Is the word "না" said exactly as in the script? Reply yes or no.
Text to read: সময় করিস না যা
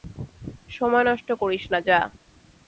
yes